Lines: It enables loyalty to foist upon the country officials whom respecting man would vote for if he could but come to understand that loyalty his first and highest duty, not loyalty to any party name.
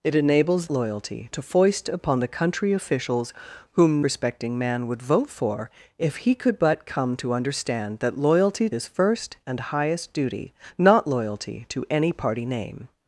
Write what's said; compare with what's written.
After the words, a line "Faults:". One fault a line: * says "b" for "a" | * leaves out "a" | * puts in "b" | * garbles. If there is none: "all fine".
It enables loyalty to foist upon the country officials whom respecting man would vote for if he could but come to understand that loyalty his first and highest duty, not loyalty to any party name.
Faults:
all fine